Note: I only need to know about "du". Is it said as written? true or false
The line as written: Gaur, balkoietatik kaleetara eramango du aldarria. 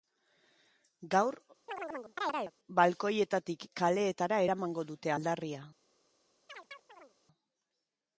false